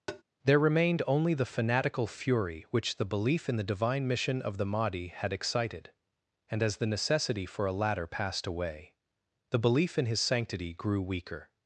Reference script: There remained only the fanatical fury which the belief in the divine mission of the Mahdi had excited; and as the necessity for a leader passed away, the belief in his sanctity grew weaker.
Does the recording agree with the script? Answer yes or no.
no